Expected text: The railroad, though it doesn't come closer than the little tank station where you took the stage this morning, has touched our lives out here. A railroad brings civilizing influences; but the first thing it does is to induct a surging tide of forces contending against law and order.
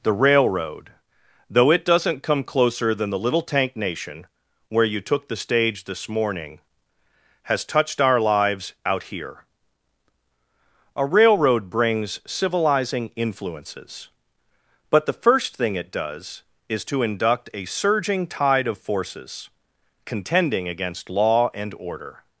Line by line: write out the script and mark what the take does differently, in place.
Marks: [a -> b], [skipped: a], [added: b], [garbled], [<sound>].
The railroad, though it doesn't come closer than the little tank [station -> nation] where you took the stage this morning, has touched our lives out here. A railroad brings civilizing influences; but the first thing it does is to induct a surging tide of forces contending against law and order.